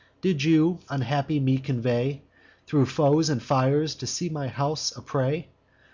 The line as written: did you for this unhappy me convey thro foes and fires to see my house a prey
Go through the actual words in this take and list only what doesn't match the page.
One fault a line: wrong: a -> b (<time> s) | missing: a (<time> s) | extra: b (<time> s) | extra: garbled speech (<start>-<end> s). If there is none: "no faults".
missing: for this (0.8 s)